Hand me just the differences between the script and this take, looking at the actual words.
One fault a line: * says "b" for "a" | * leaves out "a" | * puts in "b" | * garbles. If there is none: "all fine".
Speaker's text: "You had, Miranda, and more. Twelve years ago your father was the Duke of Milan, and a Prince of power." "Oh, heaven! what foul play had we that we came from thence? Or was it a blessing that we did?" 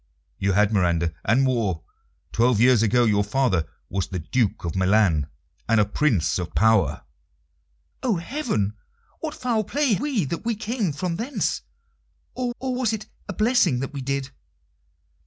* leaves out "had"
* puts in "or"